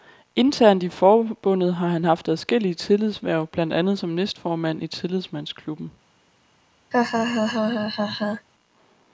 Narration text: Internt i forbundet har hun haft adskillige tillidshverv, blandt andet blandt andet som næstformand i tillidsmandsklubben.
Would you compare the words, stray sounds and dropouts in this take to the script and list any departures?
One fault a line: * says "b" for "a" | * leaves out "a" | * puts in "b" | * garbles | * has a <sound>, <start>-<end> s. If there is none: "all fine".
* says "han" for "hun"
* leaves out "blandt andet"
* has a laugh, 6.9-8.5 s